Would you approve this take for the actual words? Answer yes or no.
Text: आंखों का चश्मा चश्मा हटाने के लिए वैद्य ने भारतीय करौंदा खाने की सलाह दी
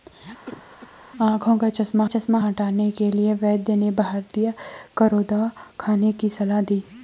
yes